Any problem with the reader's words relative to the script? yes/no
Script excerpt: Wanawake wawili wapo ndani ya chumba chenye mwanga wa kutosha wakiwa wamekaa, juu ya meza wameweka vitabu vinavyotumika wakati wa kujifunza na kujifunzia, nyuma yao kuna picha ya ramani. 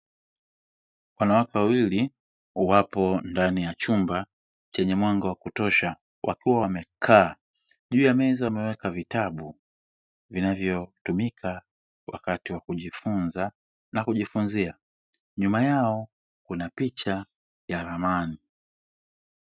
no